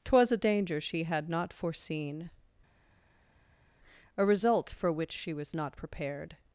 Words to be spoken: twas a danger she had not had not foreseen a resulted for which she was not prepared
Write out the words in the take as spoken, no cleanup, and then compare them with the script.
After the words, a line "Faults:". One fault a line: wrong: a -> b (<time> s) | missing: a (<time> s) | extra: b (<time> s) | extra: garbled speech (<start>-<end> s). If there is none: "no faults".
twas a danger she had not foreseen a result for which she was not prepared
Faults:
missing: had not (1.5 s)
wrong: resulted -> result (4.2 s)